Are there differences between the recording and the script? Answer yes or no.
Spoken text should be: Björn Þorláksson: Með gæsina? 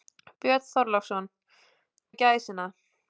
no